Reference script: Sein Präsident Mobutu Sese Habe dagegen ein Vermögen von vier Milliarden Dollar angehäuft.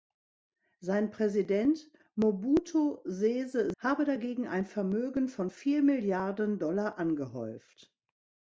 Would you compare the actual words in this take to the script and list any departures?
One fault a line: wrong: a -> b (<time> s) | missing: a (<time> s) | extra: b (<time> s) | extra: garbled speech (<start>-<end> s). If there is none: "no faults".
no faults